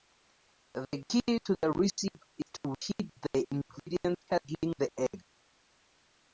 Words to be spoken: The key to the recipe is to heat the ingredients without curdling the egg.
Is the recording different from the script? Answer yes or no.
yes